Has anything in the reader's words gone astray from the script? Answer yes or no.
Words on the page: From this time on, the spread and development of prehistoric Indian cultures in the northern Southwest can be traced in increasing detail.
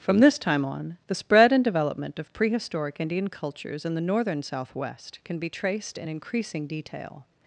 no